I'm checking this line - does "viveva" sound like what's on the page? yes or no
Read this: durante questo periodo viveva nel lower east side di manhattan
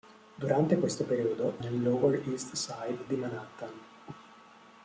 no